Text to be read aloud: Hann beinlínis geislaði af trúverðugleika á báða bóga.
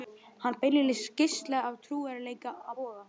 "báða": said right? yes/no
no